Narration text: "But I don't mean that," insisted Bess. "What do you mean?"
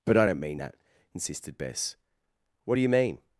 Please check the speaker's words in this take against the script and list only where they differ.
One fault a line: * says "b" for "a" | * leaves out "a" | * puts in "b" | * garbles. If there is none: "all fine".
all fine